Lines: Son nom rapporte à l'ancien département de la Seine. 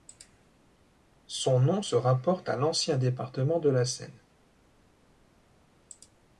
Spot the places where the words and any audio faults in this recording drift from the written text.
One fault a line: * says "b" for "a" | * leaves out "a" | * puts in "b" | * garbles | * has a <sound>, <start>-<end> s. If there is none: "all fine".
* puts in "se"